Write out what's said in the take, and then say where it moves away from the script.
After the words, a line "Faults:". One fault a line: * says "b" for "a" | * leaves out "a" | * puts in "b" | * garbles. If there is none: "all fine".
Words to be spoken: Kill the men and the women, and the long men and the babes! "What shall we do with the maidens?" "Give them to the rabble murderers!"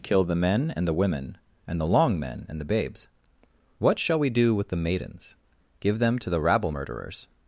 Kill the men and the women, and the long men and the babes! "What shall we do with the maidens?" "Give them to the rabble murderers!"
Faults:
all fine